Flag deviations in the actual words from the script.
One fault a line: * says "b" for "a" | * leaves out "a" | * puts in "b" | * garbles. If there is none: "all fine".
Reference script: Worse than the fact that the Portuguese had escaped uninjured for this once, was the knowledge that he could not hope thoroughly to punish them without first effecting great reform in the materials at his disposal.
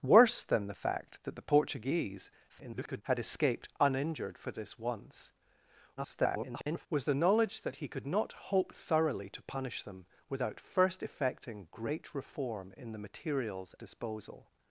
* garbles
* garbles
* leaves out "at his"